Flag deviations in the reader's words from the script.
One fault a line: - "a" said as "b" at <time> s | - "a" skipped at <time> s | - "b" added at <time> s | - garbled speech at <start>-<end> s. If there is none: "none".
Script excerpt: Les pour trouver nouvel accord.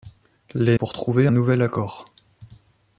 none